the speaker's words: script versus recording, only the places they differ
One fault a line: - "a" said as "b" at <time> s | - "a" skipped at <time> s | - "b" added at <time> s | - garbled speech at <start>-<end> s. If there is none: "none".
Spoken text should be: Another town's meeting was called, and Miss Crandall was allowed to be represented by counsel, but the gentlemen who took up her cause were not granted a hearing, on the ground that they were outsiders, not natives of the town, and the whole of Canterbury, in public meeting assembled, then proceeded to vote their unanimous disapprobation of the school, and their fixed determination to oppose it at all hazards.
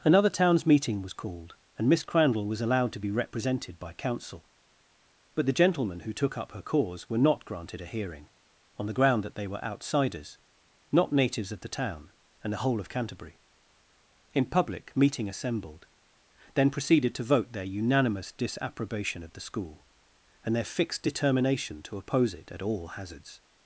none